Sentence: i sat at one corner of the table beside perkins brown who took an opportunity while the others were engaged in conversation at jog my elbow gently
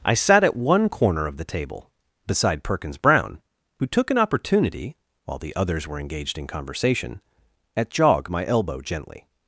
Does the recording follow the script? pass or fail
pass